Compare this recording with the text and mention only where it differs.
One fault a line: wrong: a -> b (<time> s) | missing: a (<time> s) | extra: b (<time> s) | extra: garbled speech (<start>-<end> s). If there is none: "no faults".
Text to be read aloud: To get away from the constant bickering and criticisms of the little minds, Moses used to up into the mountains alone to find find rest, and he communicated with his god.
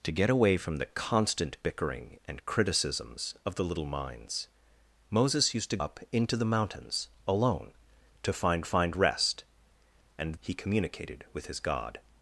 no faults